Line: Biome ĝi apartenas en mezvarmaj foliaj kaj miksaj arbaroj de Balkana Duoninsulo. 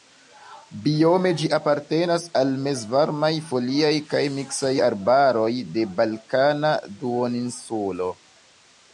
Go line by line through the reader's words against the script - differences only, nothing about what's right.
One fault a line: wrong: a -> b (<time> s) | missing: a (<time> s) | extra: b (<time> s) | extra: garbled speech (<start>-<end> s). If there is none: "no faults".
wrong: en -> al (2.4 s)